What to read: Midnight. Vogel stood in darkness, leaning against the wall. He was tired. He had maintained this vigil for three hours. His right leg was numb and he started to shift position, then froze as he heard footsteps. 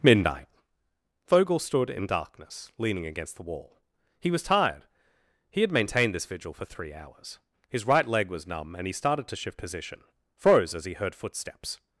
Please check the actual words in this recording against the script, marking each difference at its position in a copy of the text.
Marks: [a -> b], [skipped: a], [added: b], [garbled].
Midnight. Vogel stood in darkness, leaning against the wall. He was tired. He had maintained this vigil for three hours. His right leg was numb and he started to shift position, [skipped: then] froze as he heard footsteps.